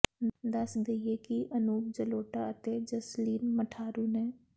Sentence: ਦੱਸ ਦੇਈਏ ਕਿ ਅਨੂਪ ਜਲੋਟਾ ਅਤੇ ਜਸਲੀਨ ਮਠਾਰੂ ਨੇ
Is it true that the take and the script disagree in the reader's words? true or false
false